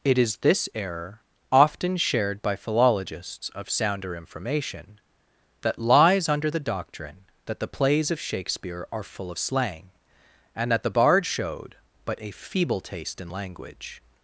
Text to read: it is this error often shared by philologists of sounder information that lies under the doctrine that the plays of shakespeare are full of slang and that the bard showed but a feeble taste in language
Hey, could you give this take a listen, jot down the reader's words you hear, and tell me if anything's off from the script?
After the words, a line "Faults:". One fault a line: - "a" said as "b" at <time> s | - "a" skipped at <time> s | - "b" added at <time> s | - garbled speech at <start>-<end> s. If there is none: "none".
it is this error often shared by philologists of sounder information that lies under the doctrine that the plays of shakespeare are full of slang and that the bard showed but a feeble taste in language
Faults:
none